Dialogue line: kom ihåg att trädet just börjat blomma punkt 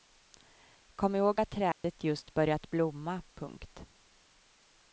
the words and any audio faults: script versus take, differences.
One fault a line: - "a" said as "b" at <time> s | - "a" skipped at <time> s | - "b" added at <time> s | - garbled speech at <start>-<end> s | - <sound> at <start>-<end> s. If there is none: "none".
- dropout at 1.7-1.8 s